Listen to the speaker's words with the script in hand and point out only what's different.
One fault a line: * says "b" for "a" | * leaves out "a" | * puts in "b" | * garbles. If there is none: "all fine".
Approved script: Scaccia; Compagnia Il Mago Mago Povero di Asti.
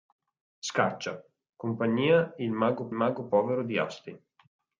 all fine